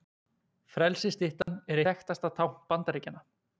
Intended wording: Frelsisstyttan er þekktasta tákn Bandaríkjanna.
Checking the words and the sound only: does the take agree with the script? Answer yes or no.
no